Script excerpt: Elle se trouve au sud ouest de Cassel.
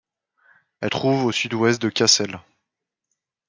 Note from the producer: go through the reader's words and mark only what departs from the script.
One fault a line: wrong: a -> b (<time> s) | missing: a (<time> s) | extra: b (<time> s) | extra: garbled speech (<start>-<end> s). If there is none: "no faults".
missing: se (0.9 s)